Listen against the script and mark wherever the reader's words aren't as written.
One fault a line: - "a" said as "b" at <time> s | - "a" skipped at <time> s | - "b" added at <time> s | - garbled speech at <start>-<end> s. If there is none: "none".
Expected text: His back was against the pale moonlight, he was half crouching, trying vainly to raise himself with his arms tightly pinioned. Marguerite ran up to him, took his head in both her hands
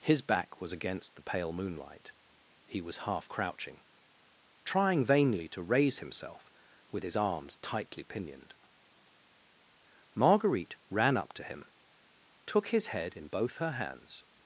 none